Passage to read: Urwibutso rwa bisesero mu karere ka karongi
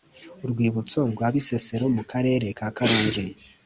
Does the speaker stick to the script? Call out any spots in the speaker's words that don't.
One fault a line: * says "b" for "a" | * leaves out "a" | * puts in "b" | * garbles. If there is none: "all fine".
all fine